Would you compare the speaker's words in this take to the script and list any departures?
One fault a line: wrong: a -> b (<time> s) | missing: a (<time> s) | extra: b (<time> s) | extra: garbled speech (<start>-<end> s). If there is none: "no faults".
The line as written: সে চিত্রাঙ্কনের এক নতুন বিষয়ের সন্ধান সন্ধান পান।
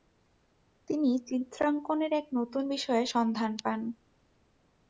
wrong: সে -> তিনি (0.9 s)
missing: সন্ধান (3.5 s)